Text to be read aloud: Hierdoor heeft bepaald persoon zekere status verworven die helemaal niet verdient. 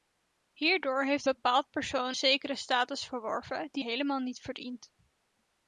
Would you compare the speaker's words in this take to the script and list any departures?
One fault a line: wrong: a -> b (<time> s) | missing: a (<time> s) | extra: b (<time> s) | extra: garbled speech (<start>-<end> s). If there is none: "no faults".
no faults